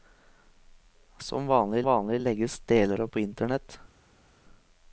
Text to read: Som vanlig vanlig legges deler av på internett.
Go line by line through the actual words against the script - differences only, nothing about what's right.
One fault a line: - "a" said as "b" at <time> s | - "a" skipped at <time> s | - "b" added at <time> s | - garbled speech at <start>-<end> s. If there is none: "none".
none